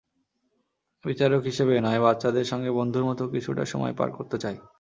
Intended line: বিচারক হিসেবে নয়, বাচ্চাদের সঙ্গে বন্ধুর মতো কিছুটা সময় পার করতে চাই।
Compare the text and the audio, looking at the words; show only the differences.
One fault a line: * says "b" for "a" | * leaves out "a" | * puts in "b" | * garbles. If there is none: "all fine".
all fine